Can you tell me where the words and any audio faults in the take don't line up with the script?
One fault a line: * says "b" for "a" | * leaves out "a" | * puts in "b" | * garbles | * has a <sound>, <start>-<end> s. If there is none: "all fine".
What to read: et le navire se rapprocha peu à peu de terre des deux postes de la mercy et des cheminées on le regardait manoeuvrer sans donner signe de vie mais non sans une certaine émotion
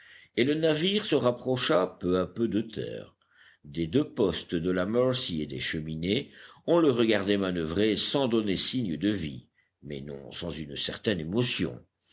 all fine